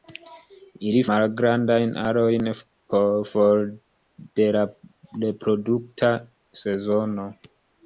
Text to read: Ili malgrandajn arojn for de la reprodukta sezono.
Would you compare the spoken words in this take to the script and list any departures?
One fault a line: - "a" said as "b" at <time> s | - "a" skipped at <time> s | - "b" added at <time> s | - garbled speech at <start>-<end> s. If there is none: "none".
none